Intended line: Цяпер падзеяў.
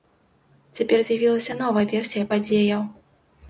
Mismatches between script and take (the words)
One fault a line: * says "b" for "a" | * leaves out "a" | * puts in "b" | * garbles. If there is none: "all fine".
* puts in "з'явілася новая версія"